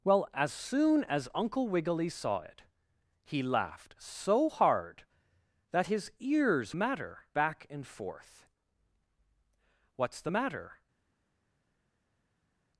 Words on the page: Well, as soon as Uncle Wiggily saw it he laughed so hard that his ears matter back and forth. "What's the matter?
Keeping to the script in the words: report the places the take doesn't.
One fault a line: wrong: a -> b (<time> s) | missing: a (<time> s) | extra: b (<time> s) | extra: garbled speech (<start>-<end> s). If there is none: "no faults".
no faults